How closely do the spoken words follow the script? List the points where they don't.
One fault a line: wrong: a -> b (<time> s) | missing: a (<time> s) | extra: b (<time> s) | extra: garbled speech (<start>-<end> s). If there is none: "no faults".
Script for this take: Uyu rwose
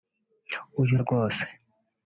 no faults